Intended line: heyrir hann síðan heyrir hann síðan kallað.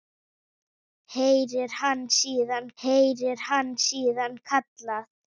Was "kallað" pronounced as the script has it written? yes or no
yes